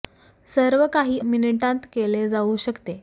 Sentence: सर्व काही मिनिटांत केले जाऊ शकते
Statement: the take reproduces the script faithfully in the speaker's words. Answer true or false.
true